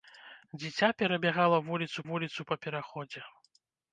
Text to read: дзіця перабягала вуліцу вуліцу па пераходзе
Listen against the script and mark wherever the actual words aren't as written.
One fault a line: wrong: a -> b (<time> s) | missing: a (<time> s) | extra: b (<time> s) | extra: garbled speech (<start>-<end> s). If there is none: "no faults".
no faults